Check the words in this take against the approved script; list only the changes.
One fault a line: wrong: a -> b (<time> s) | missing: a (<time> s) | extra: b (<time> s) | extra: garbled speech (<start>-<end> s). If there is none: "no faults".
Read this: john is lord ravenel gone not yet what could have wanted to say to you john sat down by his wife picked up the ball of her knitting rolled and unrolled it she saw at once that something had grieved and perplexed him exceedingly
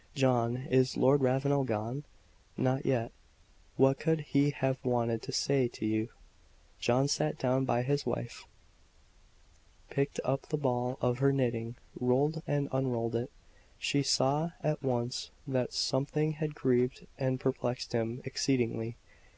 extra: he (4.2 s)